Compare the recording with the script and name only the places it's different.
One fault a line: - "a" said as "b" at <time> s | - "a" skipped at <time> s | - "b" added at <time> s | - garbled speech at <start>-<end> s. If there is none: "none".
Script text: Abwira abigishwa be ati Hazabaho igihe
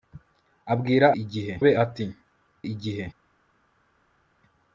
- "abigishwa" said as "igihe" at 1.2 s
- "Hazabaho" skipped at 2.0 s